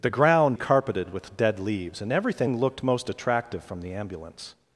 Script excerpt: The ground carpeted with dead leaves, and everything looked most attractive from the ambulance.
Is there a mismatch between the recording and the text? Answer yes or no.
no